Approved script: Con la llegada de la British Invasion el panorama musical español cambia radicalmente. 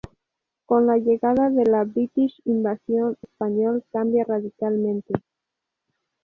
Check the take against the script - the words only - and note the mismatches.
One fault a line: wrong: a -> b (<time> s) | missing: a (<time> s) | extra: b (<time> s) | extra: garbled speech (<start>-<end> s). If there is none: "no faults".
missing: el panorama musical (3.2 s)